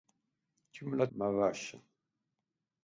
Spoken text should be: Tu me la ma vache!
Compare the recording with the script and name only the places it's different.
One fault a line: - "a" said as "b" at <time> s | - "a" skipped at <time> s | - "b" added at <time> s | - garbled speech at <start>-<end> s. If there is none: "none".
none